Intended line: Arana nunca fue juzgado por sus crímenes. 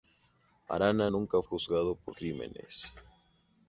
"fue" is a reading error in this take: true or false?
true